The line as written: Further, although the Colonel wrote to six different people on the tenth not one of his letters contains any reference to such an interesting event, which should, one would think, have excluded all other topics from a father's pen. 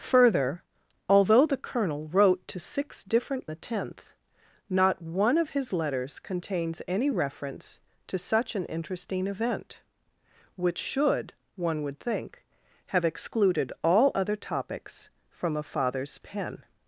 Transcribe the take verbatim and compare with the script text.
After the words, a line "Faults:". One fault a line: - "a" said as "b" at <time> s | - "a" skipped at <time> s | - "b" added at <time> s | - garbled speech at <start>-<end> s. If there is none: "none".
Further, although the Colonel wrote to six different the tenth not one of his letters contains any reference to such an interesting event, which should, one would think, have excluded all other topics from a father's pen.
Faults:
- "people on" skipped at 3.5 s